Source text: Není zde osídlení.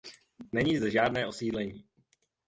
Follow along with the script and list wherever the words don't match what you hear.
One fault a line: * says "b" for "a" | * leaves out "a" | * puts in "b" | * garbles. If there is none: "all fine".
* puts in "žádné"